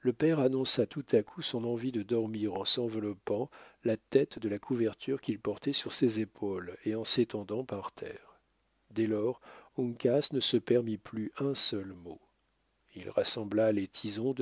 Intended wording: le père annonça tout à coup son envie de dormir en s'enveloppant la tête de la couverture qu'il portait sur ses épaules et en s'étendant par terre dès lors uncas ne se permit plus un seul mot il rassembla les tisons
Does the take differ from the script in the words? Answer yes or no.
no